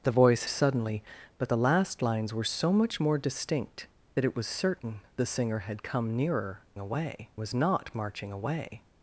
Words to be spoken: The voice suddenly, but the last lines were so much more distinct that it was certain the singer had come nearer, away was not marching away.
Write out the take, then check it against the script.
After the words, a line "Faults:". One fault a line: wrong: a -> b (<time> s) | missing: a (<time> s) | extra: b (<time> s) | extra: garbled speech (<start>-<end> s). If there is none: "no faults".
The voice suddenly, but the last lines were so much more distinct that it was certain the singer had come nearer, away was not marching away.
Faults:
no faults